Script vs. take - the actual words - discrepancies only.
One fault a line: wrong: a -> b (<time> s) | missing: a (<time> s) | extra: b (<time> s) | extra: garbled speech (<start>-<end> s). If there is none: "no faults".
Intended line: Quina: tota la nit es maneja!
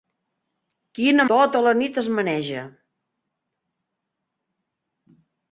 no faults